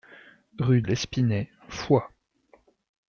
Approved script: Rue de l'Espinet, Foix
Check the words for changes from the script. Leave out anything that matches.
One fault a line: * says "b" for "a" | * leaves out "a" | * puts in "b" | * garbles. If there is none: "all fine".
* leaves out "de"